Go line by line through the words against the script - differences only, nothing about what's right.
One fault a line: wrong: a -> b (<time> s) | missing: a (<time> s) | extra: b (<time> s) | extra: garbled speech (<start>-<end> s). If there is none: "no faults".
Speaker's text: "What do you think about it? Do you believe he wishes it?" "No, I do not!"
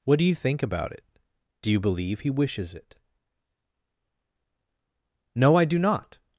no faults